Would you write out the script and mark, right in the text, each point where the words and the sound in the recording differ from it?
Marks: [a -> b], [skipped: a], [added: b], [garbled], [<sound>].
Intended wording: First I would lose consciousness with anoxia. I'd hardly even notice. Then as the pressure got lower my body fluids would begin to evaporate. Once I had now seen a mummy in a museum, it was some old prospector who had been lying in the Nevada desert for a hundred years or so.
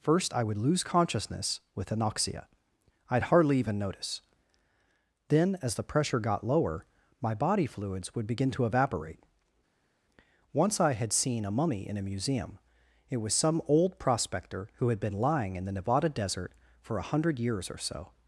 First I would lose consciousness with anoxia. I'd hardly even notice. Then as the pressure got lower my body fluids would begin to evaporate. Once I had [skipped: now] seen a mummy in a museum, it was some old prospector who had been lying in the Nevada desert for a hundred years or so.